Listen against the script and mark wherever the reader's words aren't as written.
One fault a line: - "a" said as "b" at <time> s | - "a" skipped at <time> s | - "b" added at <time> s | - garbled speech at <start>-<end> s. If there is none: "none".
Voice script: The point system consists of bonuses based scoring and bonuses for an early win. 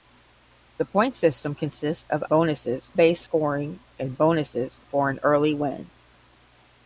none